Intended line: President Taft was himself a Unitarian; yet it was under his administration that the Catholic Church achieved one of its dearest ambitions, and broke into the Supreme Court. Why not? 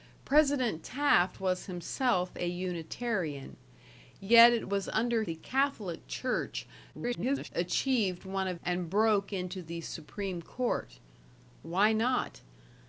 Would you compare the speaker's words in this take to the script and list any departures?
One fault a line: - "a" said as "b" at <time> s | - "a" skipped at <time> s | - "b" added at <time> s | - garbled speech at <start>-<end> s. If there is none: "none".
- "his administration that" skipped at 5.2 s
- garbled speech at 6.9-7.5 s
- "its dearest ambitions" skipped at 8.6 s